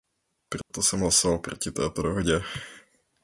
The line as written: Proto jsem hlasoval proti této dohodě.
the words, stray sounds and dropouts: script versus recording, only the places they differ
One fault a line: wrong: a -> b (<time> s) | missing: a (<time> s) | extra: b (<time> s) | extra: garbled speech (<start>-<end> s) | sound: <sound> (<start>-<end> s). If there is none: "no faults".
sound: dropout (0.6-0.7 s)